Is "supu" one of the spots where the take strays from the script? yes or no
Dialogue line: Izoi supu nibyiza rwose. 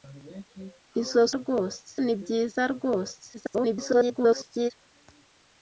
yes